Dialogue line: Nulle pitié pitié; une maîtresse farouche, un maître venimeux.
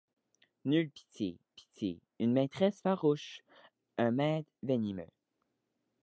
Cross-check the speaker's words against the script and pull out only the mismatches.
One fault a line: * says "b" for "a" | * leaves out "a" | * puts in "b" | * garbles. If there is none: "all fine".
all fine